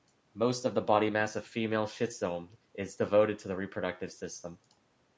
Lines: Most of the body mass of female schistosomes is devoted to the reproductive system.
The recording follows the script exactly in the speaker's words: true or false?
true